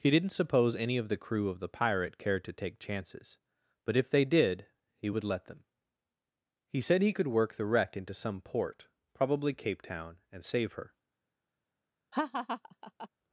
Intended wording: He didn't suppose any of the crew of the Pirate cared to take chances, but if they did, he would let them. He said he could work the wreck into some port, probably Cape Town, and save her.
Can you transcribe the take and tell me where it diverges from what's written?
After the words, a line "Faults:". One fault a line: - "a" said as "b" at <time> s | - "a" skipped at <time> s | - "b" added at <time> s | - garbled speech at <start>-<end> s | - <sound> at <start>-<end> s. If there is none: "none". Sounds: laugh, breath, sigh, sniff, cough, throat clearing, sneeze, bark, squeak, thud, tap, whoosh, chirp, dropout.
He didn't suppose any of the crew of the Pirate cared to take chances, but if they did, he would let them. He said he could work the wreck into some port, probably Cape Town, and save her.
Faults:
- laugh at 12.1-13.1 s